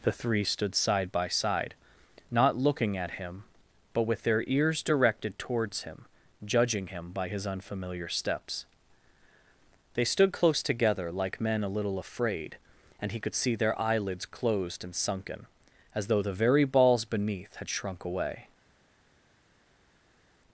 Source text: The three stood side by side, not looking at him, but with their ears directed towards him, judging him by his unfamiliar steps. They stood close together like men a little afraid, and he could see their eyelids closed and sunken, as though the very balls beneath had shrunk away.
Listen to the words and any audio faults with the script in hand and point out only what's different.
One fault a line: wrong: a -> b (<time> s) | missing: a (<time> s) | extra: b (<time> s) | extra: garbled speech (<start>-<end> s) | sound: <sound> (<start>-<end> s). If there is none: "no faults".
no faults